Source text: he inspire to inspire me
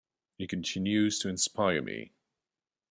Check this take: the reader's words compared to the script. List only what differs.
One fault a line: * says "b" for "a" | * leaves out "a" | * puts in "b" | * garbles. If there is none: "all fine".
* says "continues" for "inspire"